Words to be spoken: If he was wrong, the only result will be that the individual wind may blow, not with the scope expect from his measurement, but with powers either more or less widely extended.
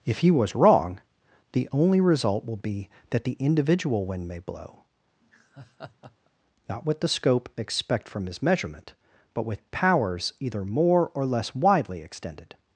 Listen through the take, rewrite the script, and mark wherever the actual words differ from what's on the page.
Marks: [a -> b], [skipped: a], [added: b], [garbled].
If he was wrong, the only result will be that the individual wind may blow, not with the scope expect from his measurement, but with powers either more or less widely extended.